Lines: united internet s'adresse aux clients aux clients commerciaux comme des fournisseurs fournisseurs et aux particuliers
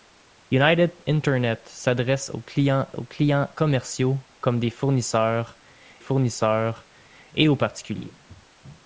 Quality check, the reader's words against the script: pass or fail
pass